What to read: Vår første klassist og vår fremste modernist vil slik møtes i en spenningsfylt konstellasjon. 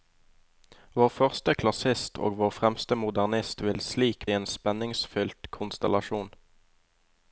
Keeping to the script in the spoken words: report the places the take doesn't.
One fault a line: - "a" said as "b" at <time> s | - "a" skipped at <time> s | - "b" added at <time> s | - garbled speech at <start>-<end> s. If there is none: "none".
- "møtes" skipped at 4.2 s